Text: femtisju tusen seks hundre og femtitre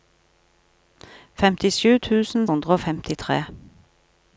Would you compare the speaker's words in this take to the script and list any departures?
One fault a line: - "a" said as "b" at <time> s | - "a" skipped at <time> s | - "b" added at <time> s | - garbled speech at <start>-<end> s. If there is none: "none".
- "seks" skipped at 2.5 s